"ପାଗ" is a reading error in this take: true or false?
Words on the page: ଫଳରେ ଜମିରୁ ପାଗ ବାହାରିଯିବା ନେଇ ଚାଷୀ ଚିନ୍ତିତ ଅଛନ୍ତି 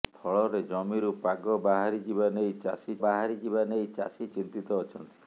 false